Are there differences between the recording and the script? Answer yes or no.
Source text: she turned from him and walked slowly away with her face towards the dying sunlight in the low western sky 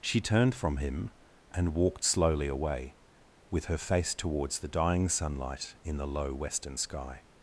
no